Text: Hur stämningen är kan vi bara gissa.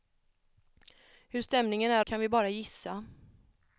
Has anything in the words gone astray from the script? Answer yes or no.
no